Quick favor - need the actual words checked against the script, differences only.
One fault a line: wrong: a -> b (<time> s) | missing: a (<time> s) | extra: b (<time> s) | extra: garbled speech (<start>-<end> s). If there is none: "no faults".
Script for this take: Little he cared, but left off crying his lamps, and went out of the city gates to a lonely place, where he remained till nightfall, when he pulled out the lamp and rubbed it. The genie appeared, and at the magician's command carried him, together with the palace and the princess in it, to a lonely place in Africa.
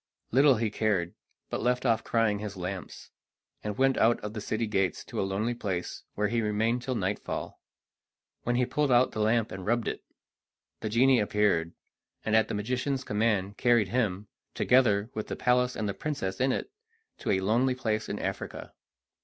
no faults